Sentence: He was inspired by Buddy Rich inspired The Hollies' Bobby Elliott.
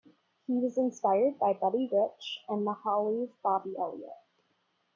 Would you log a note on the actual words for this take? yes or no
yes